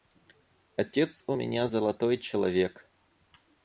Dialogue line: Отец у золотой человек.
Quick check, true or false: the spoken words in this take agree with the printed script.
false